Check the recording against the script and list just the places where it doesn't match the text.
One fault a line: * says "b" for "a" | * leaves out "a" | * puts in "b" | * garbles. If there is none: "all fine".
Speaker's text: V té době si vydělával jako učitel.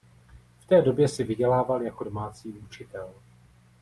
* puts in "domácí"